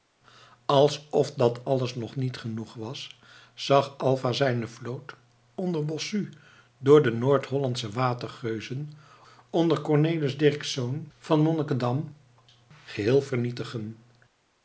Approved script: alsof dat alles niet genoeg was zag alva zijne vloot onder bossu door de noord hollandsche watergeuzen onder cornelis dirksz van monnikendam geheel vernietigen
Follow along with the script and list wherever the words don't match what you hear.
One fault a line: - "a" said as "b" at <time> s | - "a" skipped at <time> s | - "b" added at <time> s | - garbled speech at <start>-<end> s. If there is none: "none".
- "nog" added at 1.9 s